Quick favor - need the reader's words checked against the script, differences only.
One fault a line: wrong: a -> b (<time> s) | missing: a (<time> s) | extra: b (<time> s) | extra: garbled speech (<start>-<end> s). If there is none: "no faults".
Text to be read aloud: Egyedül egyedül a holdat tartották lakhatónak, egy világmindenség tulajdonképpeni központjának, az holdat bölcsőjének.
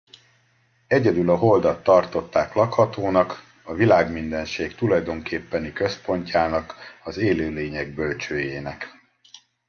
missing: egyedül (1.3 s)
wrong: egy -> a (3.6 s)
wrong: holdat -> élőlények (7.2 s)